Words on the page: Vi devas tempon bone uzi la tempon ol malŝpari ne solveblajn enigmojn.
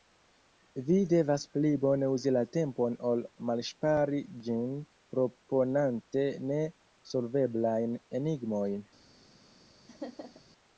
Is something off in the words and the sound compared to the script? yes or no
yes